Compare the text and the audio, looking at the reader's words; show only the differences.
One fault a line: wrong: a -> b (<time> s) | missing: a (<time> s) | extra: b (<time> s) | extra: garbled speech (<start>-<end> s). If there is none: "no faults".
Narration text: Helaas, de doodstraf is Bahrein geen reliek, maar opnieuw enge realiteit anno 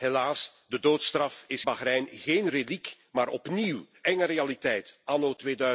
no faults